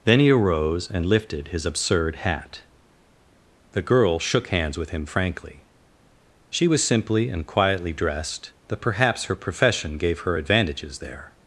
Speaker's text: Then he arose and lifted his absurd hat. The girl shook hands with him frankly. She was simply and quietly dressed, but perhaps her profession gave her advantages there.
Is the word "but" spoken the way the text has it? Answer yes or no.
no